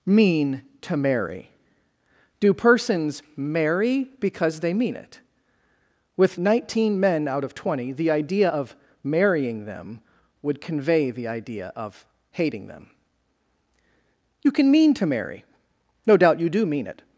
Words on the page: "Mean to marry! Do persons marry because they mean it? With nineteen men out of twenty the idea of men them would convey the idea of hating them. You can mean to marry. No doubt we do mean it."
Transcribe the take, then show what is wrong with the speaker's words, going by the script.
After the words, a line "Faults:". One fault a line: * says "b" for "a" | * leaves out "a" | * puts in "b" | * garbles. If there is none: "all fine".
"Mean to marry! Do persons marry because they mean it? With nineteen men out of twenty the idea of marrying them would convey the idea of hating them. You can mean to marry. No doubt you do mean it."
Faults:
* says "marrying" for "men"
* says "you" for "we"